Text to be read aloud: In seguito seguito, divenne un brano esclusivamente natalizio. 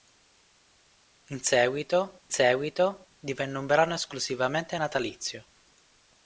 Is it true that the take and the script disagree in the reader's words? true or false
false